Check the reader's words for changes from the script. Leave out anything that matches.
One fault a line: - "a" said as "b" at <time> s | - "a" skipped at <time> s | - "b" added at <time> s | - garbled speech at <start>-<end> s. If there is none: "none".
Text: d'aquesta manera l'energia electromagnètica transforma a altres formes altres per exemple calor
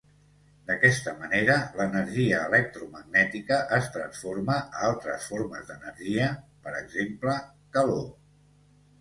- "es" added at 3.8 s
- "altres" said as "d'energia" at 5.7 s